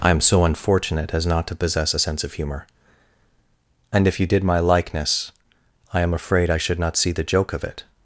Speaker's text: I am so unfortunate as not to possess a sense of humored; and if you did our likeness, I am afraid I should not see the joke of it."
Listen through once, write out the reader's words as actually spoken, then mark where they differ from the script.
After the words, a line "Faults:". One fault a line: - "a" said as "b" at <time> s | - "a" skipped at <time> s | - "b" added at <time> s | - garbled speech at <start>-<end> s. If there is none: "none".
I am so unfortunate as not to possess a sense of humor; and if you did my likeness, I am afraid I should not see the joke of it."
Faults:
- "humored" said as "humor" at 2.3 s
- "our" said as "my" at 4.4 s